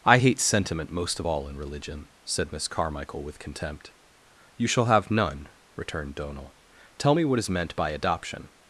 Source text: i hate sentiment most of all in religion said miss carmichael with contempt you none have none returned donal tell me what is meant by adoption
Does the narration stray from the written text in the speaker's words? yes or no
yes